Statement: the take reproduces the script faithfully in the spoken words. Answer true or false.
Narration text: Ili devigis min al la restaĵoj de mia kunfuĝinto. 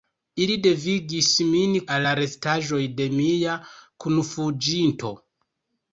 true